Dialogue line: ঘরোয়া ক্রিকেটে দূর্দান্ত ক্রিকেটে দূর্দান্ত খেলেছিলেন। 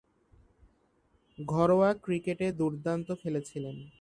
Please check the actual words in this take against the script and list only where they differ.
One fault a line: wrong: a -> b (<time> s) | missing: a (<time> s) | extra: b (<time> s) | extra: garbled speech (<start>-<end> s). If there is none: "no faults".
missing: ক্রিকেটে দূর্দান্ত (3.1 s)